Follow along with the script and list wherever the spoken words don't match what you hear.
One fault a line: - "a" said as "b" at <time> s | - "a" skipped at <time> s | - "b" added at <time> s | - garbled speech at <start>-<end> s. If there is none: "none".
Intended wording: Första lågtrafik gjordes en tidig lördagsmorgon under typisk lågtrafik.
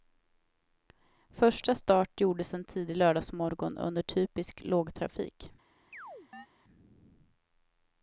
- "lågtrafik" said as "start" at 1.8 s